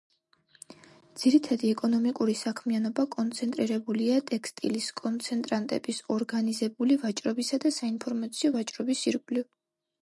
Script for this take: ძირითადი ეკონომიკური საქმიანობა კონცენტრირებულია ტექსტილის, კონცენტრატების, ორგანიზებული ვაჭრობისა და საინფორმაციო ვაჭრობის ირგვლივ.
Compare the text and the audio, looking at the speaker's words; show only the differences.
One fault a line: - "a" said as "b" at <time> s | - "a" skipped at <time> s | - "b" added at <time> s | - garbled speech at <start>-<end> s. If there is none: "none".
none